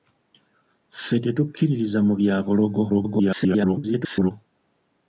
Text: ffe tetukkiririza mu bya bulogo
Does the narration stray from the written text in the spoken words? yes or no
yes